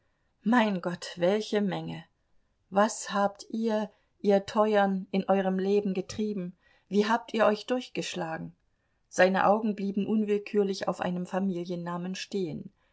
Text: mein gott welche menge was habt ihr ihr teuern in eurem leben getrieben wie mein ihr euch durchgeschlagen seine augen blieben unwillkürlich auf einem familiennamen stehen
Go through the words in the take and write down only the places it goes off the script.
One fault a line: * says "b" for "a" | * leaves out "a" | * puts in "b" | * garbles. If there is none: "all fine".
* says "habt" for "mein"